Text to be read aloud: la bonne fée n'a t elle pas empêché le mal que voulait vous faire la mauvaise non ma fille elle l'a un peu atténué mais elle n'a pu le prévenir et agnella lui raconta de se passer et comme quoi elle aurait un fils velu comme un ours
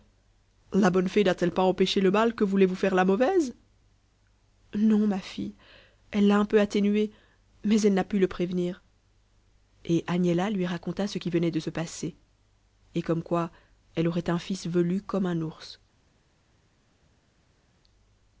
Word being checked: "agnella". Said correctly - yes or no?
yes